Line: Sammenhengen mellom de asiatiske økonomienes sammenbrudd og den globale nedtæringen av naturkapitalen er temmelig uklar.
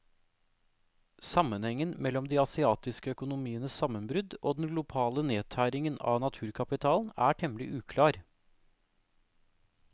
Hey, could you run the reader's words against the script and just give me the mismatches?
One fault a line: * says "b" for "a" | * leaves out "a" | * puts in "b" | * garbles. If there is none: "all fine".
all fine